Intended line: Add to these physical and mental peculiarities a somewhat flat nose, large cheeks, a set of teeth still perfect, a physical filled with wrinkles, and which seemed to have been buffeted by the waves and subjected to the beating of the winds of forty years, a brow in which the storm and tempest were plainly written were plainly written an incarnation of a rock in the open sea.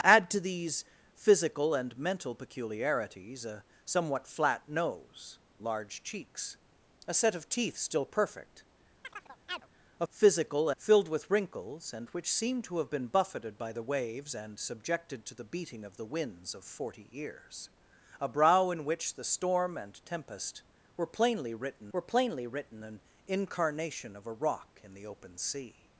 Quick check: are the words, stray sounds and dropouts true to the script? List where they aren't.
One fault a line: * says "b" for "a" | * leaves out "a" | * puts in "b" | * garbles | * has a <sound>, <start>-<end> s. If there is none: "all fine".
* has a chirp, 9.0-9.7 s